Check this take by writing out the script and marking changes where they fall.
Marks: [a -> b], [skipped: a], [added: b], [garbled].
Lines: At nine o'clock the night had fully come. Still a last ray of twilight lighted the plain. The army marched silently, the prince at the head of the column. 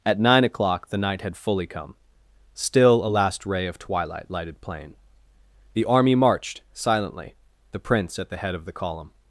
At nine o'clock the night had fully come. Still a last ray of twilight lighted [skipped: the] plain. The army marched silently, the prince at the head of the column.